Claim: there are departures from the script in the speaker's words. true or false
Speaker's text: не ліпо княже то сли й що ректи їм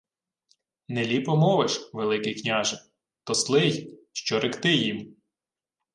true